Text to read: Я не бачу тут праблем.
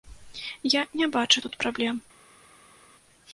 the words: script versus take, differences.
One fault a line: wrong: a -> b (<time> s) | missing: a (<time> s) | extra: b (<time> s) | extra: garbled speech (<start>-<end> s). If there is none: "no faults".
no faults